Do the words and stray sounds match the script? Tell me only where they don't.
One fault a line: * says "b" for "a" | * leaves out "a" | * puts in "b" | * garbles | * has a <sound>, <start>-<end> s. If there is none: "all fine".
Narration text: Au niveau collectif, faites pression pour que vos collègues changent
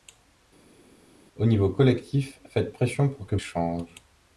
* leaves out "vos collègues"